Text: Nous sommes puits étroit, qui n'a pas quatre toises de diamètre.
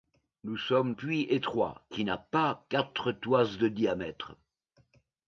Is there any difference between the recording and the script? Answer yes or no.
no